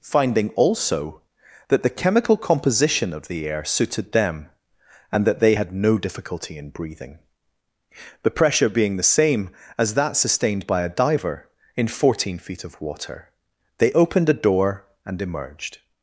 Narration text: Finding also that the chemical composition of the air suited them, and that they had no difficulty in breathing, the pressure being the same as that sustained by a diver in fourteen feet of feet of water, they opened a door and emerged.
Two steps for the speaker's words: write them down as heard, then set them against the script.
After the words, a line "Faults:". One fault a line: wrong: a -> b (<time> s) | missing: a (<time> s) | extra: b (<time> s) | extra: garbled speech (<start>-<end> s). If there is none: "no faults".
Finding also that the chemical composition of the air suited them, and that they had no difficulty in breathing, the pressure being the same as that sustained by a diver in fourteen feet of water, they opened a door and emerged.
Faults:
missing: feet of (12.8 s)